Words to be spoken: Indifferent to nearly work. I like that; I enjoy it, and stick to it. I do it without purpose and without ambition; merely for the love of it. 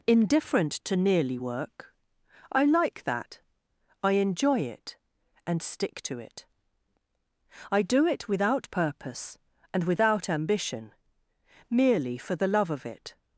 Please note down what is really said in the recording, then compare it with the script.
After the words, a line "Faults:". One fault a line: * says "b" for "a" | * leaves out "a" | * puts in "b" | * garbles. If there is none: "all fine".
Indifferent to nearly work. I like that; I enjoy it, and stick to it. I do it without purpose and without ambition; merely for the love of it.
Faults:
all fine